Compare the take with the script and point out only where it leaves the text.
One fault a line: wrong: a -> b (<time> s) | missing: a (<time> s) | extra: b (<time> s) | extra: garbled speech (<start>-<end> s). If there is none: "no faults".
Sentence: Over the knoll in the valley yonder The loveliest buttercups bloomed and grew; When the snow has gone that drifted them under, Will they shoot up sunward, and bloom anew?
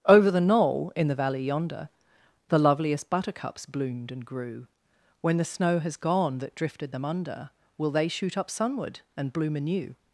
no faults